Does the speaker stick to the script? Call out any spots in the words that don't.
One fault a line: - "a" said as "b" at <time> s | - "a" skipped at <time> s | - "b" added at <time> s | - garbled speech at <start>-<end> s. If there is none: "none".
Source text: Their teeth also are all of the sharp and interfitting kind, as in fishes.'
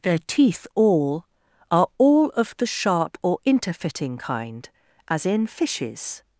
- "also" said as "all" at 0.8 s
- "and" said as "or" at 3.2 s